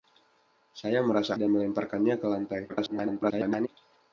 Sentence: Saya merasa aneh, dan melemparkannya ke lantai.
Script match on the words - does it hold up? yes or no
no